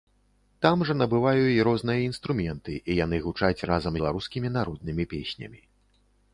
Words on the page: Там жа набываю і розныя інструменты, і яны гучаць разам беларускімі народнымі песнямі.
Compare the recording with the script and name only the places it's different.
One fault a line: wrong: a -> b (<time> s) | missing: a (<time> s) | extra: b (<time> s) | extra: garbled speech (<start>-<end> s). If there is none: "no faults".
no faults